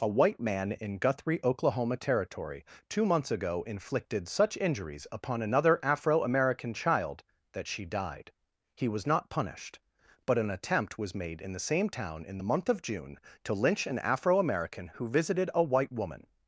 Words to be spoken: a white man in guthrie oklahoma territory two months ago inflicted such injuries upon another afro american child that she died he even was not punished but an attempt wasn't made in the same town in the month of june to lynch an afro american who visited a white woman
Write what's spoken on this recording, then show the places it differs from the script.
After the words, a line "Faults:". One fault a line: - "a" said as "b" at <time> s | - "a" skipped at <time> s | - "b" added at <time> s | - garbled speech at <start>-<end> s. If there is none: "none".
a white man in guthrie oklahoma territory two months ago inflicted such injuries upon another afro american child that she died he was not punished but an attempt was made in the same town in the month of june to lynch an afro american who visited a white woman
Faults:
- "even" skipped at 8.9 s
- "wasn't" said as "was" at 11.0 s